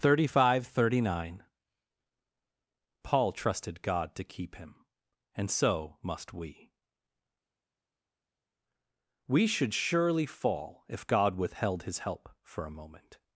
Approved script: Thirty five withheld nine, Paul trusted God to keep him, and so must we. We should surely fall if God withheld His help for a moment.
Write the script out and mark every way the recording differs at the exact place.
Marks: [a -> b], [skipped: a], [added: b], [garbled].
Thirty five [withheld -> thirty] nine, Paul trusted God to keep him, and so must we. We should surely fall if God withheld His help for a moment.